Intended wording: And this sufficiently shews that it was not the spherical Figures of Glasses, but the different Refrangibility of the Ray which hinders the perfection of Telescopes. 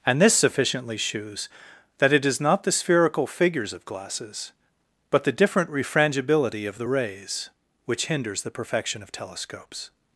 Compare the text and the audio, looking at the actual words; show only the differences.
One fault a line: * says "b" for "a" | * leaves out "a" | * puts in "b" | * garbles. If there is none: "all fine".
* says "is" for "was"
* says "Rays" for "Ray"